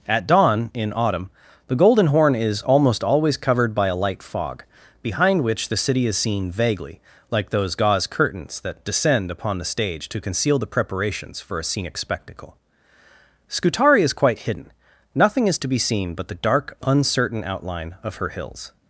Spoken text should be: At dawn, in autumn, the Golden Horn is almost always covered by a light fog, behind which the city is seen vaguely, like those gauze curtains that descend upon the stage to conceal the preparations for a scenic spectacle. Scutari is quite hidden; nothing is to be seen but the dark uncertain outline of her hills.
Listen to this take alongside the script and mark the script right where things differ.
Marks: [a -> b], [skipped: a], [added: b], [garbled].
At dawn, in autumn, the Golden Horn is almost always covered by a light fog, behind which the city is seen vaguely, like those gauze curtains that descend upon the stage to conceal the preparations for a scenic spectacle. Scutari is quite hidden; nothing is to be seen but the dark uncertain outline of her hills.